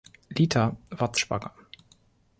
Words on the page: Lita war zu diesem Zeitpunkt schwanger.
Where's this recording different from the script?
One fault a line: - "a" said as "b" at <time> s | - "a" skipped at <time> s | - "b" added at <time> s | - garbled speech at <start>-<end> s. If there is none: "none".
- "diesem Zeitpunkt" skipped at 1.2 s